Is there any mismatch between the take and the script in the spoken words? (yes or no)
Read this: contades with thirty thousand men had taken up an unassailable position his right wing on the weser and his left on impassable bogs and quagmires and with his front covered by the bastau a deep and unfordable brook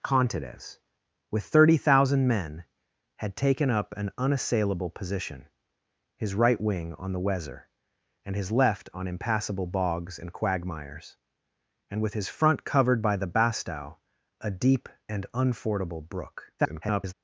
yes